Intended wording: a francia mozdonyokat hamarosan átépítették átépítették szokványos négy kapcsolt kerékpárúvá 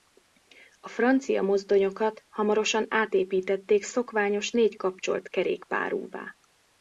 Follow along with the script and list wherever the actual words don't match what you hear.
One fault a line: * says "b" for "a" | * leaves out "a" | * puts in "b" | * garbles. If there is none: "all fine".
* leaves out "átépítették"